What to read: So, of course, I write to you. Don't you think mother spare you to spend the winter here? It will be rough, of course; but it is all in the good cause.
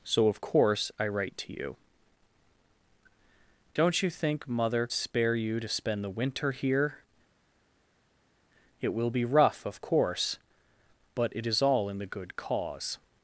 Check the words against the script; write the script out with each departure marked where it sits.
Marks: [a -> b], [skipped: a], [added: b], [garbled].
So, of course, I write to you. Don't you think mother spare you to spend the winter here? It will be rough, of course; but it is all in the good cause.